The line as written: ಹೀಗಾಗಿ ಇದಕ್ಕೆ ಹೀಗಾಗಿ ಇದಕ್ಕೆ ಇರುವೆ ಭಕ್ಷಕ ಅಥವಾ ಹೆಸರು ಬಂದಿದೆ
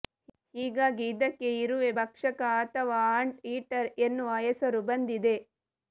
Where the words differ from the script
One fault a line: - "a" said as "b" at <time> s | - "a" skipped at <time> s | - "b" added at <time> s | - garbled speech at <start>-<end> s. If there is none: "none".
- "ಹೀಗಾಗಿ ಇದಕ್ಕೆ" skipped at 1.5 s
- "ಆಂಟ್ ಈಟರ್ ಎನ್ನುವ" added at 3.2 s